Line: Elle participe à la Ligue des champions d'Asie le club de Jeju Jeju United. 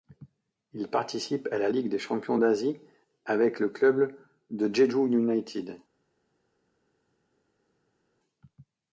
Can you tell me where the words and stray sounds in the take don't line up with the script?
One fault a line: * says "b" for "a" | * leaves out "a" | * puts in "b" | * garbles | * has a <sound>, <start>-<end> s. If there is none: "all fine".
* says "Il" for "Elle"
* puts in "avec"
* leaves out "Jeju"